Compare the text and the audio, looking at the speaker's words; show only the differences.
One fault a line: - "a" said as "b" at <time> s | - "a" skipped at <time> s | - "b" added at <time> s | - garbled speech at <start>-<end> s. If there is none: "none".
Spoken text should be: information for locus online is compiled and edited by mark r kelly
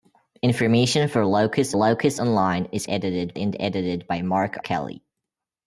- "locus" added at 1.7 s
- "compiled" said as "edited" at 2.9 s
- "r" skipped at 4.6 s